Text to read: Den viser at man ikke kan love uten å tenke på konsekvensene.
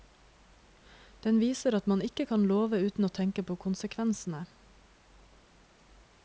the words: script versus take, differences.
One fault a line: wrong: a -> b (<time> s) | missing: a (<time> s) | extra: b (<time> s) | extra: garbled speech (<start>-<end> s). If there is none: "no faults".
no faults